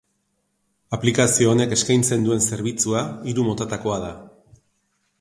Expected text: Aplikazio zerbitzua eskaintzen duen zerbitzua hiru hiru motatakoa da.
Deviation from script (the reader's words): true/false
true